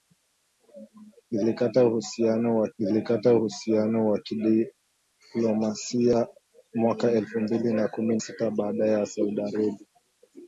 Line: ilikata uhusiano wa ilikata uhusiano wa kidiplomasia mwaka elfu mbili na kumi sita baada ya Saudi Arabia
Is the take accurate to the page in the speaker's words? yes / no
yes